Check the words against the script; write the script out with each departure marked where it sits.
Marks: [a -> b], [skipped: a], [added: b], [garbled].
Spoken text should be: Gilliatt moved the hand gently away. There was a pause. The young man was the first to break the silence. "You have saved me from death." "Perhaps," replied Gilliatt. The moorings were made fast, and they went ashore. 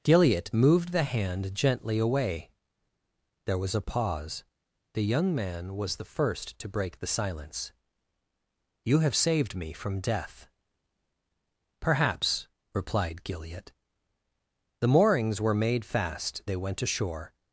Gilliatt moved the hand gently away. There was a pause. The young man was the first to break the silence. "You have saved me from death." "Perhaps," replied Gilliatt. The moorings were made fast, [skipped: and] they went ashore.